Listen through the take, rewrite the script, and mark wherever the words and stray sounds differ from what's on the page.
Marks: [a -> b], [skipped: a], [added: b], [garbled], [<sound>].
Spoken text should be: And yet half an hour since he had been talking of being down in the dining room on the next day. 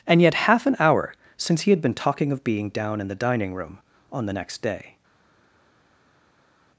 And yet half an hour since he had been talking of being down in the dining room on the next day.